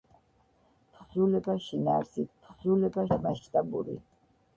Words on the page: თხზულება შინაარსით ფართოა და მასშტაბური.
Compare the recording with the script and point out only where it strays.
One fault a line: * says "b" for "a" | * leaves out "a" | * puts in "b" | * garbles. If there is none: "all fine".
* says "თხზულება" for "ფართოა"